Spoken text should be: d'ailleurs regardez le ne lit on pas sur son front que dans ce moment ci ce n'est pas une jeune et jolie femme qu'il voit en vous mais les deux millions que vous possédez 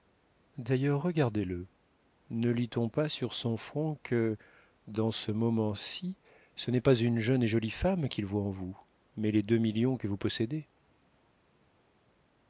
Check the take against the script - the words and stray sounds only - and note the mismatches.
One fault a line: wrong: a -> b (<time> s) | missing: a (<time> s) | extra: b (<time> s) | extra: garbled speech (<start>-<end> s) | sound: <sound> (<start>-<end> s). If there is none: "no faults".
no faults